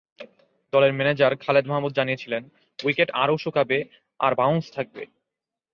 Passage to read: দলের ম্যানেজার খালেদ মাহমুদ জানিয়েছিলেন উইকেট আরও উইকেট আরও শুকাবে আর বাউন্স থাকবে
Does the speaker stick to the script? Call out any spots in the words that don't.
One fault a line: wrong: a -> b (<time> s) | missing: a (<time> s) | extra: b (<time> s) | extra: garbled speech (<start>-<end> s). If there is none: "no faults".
missing: উইকেট আরও (3.4 s)